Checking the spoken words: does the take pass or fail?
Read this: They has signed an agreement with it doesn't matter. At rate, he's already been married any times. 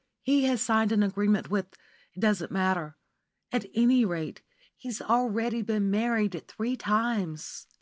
fail